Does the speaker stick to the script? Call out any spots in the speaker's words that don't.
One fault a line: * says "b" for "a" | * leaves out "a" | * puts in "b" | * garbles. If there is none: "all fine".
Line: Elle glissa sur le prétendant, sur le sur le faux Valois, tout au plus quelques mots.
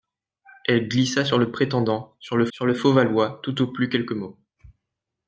all fine